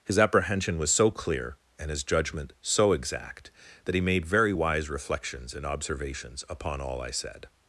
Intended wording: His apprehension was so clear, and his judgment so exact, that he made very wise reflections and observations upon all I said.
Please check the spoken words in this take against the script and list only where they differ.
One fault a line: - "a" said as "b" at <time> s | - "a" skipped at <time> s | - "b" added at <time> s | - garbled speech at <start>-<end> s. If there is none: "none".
none